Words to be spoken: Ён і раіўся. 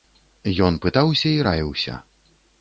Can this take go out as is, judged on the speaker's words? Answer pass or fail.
fail